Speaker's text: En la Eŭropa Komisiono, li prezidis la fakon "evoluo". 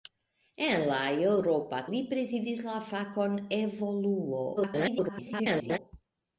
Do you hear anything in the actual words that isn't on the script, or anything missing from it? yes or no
yes